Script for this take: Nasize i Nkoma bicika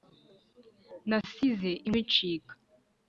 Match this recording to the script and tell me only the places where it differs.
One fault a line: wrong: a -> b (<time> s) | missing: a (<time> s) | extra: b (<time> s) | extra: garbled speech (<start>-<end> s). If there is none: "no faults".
missing: Nkoma (1.9 s)